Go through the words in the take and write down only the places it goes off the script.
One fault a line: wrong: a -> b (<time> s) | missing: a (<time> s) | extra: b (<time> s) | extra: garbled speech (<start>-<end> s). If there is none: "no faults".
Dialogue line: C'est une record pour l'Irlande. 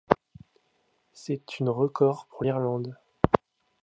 no faults